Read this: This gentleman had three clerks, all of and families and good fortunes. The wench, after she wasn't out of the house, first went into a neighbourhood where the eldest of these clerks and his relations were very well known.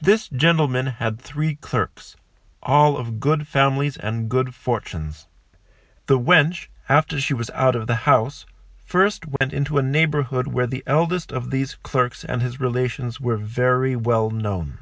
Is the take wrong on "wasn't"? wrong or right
wrong